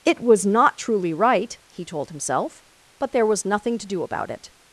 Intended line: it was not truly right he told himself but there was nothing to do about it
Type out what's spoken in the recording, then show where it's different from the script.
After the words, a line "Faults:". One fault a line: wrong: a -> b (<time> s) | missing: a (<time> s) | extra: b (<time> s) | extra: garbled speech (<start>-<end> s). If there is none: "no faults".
it was not truly right he told himself but there was nothing to do about it
Faults:
no faults